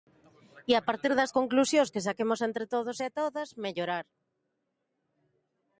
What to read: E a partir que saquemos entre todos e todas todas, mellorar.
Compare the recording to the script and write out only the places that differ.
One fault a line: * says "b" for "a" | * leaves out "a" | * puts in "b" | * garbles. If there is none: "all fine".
* puts in "das conclusións"
* leaves out "todas"